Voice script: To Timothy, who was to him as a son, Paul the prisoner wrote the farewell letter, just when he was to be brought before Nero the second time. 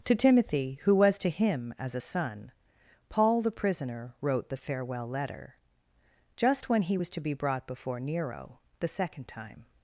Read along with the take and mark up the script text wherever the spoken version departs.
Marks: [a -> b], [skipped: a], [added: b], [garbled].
To Timothy, who was to him as a son, Paul the prisoner wrote the farewell letter, just when he was to be brought before Nero the second time.